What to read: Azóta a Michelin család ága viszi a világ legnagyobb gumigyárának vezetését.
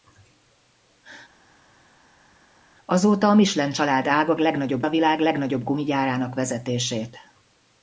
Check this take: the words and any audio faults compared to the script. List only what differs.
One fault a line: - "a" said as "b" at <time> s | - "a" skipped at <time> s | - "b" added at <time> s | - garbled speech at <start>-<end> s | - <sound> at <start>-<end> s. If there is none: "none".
- "viszi" said as "legnagyobb" at 4.4 s